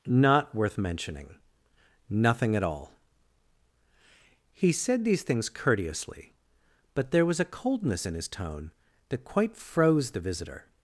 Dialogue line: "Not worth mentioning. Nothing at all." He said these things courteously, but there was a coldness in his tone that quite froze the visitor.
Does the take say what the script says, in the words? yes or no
yes